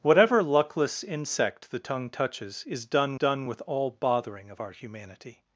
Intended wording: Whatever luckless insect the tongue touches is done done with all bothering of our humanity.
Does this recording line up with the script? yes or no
yes